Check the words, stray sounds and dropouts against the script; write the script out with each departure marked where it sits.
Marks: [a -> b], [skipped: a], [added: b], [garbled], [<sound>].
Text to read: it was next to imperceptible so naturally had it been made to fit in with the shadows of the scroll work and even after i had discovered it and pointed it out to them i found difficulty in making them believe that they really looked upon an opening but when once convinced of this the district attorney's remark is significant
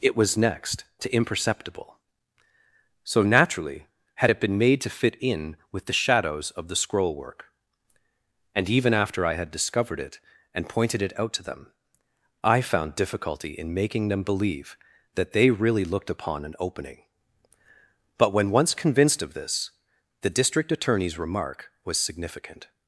it was next to imperceptible so naturally had it been made to fit in with the shadows of the scroll work and even after i had discovered it and pointed it out to them i found difficulty in making them believe that they really looked upon an opening but when once convinced of this the district attorney's remark [is -> was] significant